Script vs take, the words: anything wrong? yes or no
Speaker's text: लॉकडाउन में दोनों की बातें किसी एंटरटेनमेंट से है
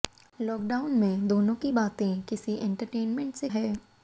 no